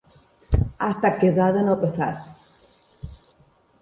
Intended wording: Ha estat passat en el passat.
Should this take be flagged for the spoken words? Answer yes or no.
yes